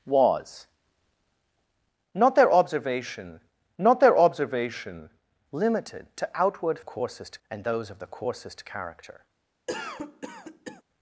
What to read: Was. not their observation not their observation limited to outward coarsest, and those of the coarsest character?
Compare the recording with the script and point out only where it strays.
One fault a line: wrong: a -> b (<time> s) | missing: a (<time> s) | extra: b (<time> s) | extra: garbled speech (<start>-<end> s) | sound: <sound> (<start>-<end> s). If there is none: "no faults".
sound: cough (9.7-10.8 s)